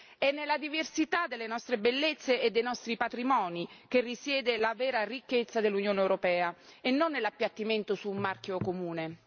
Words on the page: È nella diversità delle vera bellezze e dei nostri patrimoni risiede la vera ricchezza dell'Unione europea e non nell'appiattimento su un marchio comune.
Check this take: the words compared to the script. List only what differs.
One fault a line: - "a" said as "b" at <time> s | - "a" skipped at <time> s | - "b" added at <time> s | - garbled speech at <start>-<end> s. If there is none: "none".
- "vera" said as "nostre" at 1.5 s
- "che" added at 3.9 s